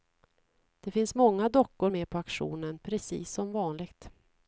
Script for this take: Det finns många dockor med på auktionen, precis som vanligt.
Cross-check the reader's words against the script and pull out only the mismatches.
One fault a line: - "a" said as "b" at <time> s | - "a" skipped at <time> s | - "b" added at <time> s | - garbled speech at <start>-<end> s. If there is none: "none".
none